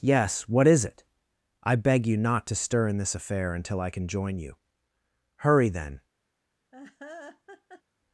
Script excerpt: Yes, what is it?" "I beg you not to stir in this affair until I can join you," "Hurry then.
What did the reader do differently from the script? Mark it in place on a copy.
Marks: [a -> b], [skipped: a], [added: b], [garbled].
Yes, what is it?" "I beg you not to stir in this affair until I can join you," "Hurry then.